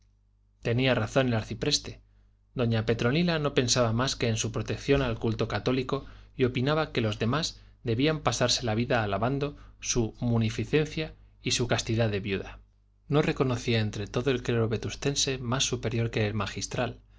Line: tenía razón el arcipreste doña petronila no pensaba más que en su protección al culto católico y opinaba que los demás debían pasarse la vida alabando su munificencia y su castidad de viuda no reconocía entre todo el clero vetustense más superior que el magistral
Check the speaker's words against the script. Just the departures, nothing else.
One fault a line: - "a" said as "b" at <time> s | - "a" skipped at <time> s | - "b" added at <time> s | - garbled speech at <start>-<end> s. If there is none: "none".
none